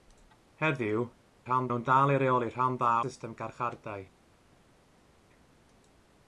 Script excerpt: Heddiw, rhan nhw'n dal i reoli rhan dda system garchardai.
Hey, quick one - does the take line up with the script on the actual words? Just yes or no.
yes